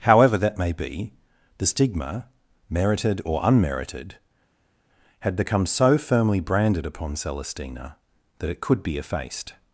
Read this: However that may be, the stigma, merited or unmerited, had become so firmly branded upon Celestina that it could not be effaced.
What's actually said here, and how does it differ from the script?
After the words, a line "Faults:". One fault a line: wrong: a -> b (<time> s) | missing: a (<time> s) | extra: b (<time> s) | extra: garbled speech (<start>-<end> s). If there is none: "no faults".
However that may be, the stigma, merited or unmerited, had become so firmly branded upon Celestina that it could be effaced.
Faults:
missing: not (8.8 s)